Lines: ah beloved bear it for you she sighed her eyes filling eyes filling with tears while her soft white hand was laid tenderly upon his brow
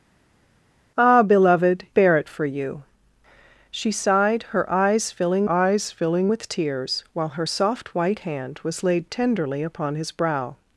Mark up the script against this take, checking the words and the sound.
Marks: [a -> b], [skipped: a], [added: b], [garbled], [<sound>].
ah beloved bear it for you she sighed her eyes filling eyes filling with tears while her soft white hand was laid tenderly upon his brow